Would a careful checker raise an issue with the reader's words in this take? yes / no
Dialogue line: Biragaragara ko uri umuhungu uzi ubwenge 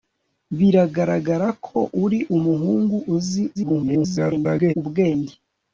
yes